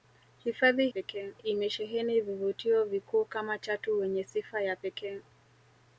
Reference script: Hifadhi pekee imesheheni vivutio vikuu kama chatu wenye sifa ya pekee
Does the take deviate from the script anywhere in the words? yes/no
no